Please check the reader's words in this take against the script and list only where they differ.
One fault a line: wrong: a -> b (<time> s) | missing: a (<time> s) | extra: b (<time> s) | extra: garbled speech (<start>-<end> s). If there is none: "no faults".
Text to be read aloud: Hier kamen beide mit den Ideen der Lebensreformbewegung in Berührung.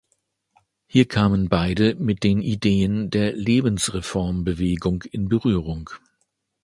no faults